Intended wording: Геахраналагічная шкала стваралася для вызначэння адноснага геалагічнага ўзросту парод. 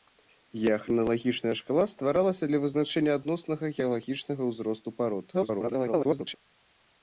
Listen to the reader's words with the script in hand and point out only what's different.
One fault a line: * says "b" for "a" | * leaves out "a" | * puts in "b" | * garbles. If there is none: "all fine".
* garbles